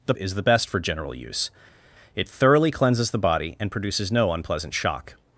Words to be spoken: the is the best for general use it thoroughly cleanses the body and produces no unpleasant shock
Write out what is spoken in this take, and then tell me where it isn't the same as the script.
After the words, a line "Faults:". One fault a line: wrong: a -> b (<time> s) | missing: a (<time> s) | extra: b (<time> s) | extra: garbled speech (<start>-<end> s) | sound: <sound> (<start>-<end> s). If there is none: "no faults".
the is the best for general use it thoroughly cleanses the body and produces no unpleasant shock
Faults:
no faults